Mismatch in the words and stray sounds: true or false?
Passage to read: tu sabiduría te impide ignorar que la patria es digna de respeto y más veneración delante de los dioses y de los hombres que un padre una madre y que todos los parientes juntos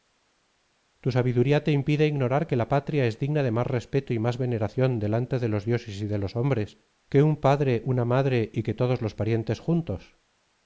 true